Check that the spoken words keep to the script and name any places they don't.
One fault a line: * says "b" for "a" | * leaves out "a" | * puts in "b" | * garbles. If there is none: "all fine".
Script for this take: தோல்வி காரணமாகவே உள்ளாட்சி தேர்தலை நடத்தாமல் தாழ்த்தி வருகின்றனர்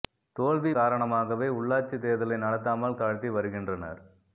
all fine